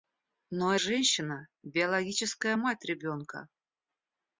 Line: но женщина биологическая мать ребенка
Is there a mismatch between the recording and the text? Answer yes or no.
no